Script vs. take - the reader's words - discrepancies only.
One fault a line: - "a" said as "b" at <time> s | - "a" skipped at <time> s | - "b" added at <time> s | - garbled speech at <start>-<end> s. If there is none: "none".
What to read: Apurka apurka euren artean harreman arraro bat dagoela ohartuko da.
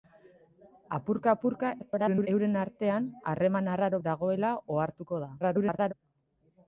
- garbled speech at 1.8-2.3 s
- "bat" skipped at 4.0 s
- garbled speech at 5.4-5.9 s